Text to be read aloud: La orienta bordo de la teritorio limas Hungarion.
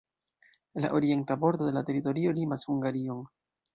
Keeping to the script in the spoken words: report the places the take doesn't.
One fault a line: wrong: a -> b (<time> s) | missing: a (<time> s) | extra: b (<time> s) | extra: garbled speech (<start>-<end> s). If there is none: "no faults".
no faults